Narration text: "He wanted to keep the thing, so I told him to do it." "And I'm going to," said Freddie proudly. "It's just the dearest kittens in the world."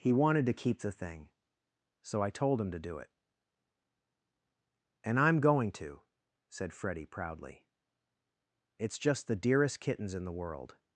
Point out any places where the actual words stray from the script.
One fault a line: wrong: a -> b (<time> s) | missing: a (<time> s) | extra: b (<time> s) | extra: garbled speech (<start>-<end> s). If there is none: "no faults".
no faults